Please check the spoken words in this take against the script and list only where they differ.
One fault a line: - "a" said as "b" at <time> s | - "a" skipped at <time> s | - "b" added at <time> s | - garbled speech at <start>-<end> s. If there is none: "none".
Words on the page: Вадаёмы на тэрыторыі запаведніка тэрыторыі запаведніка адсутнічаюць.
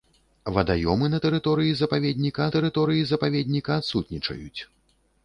none